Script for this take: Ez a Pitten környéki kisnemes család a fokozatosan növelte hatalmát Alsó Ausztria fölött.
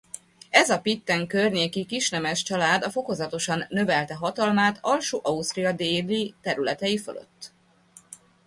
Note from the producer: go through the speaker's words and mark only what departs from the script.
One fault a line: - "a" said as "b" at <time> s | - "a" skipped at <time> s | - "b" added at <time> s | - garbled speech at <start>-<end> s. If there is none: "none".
- "déli területei" added at 5.7 s